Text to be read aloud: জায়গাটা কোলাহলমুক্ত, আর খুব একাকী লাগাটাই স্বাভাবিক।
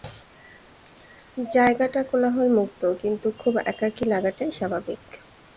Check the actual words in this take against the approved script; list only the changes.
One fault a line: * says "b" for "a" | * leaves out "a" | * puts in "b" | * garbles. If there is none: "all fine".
* says "কিন্তু" for "আর"